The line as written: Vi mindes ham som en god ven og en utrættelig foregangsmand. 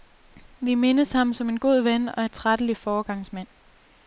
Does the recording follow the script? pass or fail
fail